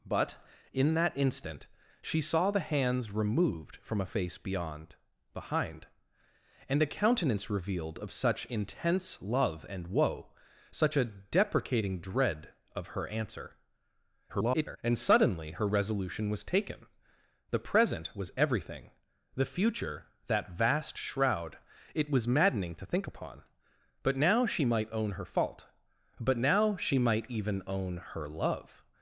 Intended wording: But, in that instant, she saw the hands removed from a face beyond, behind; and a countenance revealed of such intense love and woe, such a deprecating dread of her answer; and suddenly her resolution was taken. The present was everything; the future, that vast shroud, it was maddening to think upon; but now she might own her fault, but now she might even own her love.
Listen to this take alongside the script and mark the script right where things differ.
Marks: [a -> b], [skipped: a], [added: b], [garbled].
But, in that instant, she saw the hands removed from a face beyond, behind; and a countenance revealed of such intense love and woe, such a deprecating dread of her answer; [garbled] and suddenly her resolution was taken. The present was everything; the future, that vast shroud, it was maddening to think upon; but now she might own her fault, but now she might even own her love.